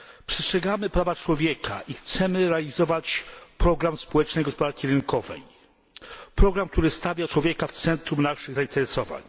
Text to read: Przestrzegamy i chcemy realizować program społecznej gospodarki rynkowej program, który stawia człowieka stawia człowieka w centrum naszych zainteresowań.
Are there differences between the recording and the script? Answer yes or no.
yes